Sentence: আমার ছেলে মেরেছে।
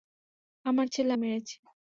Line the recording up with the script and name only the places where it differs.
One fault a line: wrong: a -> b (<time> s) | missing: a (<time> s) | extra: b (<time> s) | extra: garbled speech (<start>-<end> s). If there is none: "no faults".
no faults